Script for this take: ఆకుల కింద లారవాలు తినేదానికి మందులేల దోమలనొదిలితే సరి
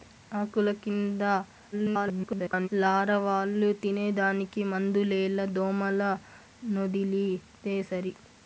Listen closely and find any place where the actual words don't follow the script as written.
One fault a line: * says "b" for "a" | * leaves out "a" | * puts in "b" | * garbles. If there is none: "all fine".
* garbles